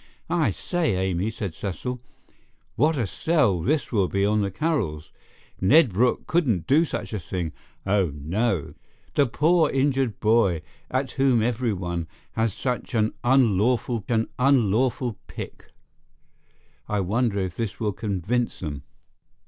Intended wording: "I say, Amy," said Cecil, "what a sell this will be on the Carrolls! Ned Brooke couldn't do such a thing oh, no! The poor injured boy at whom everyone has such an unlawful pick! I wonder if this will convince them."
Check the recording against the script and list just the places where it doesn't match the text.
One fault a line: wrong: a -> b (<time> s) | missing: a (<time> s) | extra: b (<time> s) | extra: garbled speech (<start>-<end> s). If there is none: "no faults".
extra: an unlawful (14.1 s)